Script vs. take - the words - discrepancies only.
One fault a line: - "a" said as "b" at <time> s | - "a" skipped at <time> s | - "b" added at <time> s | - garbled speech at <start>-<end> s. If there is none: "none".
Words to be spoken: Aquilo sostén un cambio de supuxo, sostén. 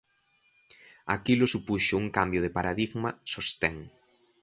- "sostén" said as "supuxo" at 1.5 s
- "supuxo" said as "paradigma" at 2.6 s